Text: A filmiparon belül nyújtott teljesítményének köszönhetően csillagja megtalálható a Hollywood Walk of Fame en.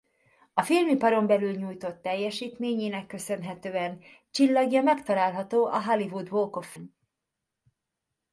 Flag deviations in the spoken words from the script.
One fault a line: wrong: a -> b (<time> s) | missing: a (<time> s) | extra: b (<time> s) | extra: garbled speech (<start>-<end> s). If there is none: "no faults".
missing: Fame (6.7 s)